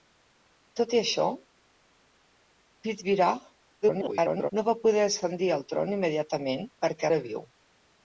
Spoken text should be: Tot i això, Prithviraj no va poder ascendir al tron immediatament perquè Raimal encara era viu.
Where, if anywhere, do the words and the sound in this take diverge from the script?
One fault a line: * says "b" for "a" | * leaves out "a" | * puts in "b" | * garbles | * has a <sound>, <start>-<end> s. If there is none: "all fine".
* garbles
* leaves out "Raimal encara"